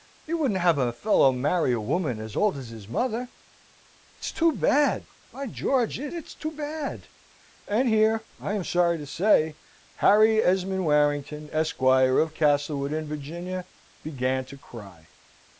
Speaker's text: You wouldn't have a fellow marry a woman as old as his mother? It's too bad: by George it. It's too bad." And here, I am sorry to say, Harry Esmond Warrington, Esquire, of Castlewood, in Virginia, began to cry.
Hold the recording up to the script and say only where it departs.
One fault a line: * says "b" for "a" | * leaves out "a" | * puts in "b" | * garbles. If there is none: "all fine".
all fine